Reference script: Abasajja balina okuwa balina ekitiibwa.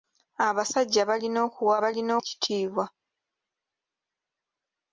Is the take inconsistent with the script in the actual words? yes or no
no